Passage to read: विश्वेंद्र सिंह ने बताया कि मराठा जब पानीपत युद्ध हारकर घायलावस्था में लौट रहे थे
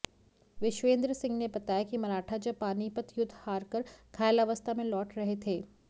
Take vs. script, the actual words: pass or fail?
pass